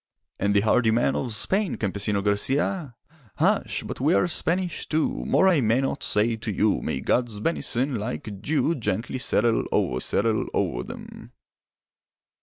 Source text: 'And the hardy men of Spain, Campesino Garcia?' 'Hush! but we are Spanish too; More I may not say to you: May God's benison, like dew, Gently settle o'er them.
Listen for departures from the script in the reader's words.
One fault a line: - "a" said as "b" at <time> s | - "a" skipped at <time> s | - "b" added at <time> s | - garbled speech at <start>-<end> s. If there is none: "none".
- "settle o'er" added at 10.0 s